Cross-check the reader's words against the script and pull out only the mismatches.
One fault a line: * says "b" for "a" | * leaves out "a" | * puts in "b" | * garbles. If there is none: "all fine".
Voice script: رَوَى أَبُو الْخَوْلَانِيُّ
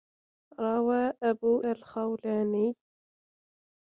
all fine